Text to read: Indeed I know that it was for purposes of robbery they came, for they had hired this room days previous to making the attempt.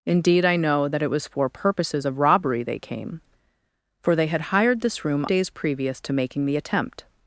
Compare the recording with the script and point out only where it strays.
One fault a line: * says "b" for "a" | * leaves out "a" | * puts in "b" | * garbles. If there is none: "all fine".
all fine